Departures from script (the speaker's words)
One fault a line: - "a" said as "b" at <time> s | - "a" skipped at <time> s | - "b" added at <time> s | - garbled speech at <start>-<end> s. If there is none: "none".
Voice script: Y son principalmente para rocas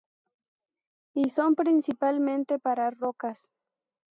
none